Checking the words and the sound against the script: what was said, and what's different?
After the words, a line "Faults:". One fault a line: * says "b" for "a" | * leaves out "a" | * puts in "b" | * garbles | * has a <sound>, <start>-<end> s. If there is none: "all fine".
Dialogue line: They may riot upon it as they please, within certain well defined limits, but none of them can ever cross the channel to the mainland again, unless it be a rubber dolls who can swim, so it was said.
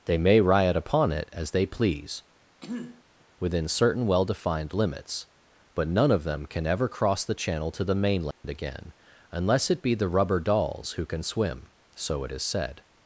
They may riot upon it as they please, within certain well defined limits, but none of them can ever cross the channel to the mainland again, unless it be the rubber dolls who can swim, so it is said.
Faults:
* has a throat clearing, 2.6-3.0 s
* has a dropout, 8.3-8.4 s
* says "the" for "a"
* says "is" for "was"